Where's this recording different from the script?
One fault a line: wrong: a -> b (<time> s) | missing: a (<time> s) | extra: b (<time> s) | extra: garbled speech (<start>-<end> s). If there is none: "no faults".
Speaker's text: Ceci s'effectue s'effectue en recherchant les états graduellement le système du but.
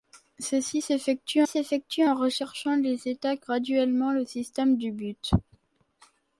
no faults